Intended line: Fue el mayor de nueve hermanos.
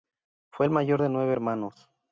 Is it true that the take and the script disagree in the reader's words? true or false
false